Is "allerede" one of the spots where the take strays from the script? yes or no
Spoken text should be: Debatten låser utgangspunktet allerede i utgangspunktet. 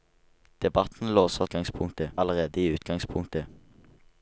no